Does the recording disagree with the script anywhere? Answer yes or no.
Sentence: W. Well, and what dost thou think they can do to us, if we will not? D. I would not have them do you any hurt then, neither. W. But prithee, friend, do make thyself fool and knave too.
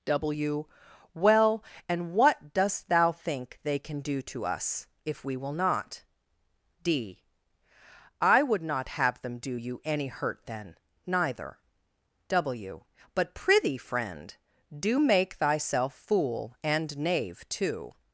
no